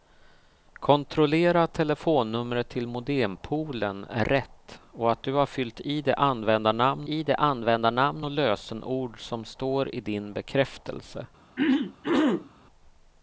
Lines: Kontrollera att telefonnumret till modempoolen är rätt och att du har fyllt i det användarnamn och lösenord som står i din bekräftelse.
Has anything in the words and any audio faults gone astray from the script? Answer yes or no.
yes